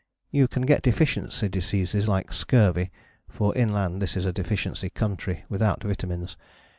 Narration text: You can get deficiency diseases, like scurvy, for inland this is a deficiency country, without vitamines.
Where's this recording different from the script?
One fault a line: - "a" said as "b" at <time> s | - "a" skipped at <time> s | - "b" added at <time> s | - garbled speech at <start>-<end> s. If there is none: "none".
none